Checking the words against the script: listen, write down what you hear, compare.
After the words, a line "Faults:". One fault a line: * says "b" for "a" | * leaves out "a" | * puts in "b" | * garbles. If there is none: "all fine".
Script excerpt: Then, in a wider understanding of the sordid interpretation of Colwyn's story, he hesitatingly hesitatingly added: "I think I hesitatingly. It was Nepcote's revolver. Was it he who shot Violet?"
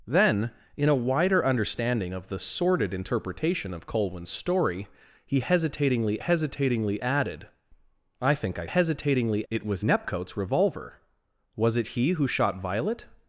Then, in a wider understanding of the sordid interpretation of Colwyn's story, he hesitatingly hesitatingly added: "I think I hesitatingly. It was Nepcote's revolver. Was it he who shot Violet?"
Faults:
all fine